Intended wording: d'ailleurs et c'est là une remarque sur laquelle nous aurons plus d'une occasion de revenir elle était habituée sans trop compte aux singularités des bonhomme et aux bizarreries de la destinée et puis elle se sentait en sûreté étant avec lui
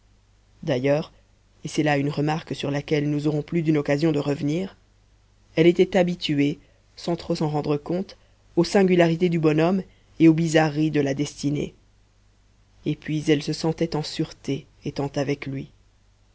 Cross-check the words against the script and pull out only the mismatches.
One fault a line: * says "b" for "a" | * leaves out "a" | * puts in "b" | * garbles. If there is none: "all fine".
* puts in "s'en rendre"
* says "du" for "des"